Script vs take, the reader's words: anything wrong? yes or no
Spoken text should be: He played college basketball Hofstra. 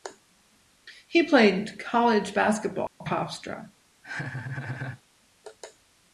no